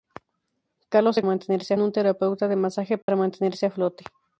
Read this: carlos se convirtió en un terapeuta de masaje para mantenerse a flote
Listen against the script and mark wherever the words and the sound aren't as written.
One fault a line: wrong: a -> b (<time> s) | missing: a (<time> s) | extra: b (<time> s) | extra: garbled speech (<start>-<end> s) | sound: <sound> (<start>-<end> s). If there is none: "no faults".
wrong: convirtió -> mantenerse (1.2 s)
sound: dropout (3.0-3.1 s)